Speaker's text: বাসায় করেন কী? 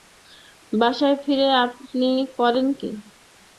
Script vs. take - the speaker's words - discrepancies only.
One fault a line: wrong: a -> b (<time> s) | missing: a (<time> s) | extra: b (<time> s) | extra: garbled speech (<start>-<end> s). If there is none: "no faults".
extra: ফিরে আপনি (1.2 s)